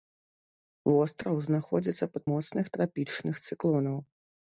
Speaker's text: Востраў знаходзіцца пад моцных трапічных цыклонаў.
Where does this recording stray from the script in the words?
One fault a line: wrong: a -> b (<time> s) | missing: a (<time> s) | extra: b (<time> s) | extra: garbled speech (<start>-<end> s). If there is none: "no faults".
no faults